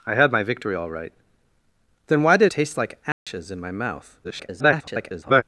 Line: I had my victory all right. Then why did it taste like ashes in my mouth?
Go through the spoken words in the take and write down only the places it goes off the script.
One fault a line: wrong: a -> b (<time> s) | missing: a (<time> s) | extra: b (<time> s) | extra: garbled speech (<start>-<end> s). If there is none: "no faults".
missing: it (2.5 s)
extra: garbled speech (4.2-5.4 s)